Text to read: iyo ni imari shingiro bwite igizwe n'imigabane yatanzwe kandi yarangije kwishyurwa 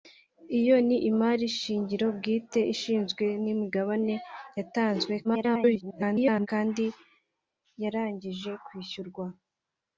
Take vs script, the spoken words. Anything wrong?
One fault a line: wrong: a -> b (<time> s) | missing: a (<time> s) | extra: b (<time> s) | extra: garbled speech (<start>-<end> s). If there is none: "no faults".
extra: garbled speech (5.2-6.5 s)